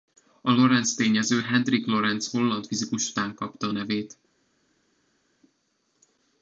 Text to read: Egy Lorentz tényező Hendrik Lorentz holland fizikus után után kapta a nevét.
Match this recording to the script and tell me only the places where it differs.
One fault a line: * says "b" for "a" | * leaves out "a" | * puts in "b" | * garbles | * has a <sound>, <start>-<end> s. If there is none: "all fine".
* says "A" for "Egy"
* leaves out "után"